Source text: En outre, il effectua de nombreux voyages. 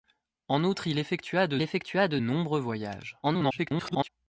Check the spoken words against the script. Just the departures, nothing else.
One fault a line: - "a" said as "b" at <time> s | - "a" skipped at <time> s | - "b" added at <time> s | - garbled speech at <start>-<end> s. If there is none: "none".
- "effectua de" added at 1.6 s
- garbled speech at 3.2-4.1 s